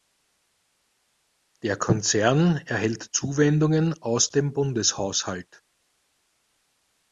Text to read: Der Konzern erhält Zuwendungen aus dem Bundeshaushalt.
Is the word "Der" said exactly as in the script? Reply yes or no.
yes